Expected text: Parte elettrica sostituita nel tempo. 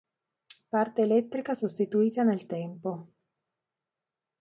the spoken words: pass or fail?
pass